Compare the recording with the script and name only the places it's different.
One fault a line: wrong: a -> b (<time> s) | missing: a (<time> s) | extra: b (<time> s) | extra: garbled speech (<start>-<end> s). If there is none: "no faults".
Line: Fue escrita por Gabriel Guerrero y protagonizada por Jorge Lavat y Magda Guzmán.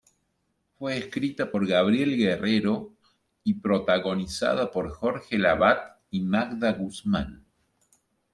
no faults